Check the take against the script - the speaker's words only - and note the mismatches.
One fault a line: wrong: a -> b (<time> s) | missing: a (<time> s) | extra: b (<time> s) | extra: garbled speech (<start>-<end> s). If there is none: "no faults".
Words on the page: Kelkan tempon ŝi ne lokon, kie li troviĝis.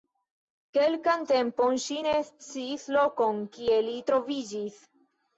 extra: sciis (2.3 s)